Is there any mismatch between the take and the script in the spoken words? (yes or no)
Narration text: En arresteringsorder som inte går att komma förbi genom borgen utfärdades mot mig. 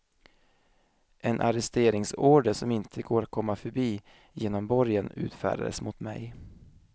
no